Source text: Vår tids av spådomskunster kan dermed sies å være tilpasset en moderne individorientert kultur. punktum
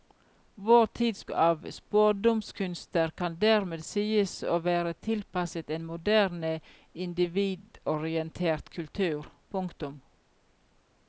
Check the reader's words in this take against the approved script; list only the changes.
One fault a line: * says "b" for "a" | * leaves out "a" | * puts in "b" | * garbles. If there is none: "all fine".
all fine